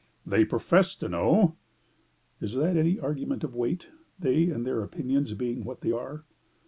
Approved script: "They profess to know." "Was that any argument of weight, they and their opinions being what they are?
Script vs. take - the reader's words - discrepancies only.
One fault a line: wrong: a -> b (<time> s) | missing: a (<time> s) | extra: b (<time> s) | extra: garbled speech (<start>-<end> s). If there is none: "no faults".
wrong: Was -> Is (2.4 s)